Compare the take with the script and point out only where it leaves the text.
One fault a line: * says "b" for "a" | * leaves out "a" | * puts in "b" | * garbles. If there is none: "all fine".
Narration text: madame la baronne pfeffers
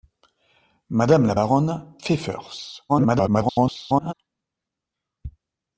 * garbles